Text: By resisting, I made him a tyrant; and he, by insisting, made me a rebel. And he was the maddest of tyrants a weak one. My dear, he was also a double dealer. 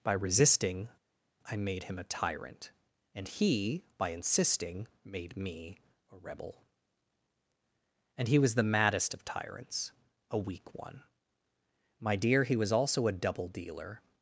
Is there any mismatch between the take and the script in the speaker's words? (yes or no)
no